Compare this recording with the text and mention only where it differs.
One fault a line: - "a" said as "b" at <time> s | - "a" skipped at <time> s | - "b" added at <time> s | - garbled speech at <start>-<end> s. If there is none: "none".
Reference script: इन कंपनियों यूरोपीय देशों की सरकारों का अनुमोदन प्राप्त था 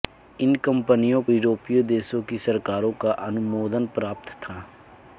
none